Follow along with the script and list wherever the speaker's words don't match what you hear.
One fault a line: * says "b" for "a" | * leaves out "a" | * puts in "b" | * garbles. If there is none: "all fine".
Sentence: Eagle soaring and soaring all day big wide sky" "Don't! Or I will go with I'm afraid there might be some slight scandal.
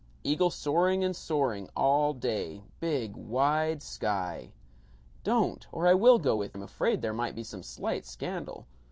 all fine